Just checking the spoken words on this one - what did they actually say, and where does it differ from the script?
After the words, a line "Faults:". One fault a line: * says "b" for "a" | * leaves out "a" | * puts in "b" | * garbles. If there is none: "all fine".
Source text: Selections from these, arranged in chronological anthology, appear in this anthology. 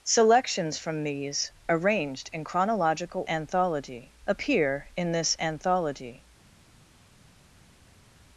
Selections from these, arranged in chronological anthology, appear in this anthology.
Faults:
all fine